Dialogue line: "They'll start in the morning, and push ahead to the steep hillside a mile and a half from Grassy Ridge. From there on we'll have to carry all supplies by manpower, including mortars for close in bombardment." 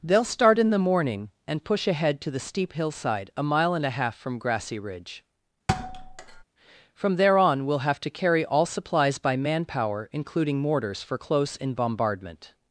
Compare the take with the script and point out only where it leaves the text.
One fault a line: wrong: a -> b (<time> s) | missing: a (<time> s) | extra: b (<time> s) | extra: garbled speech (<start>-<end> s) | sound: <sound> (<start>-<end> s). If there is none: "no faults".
sound: thud (5.7-6.4 s)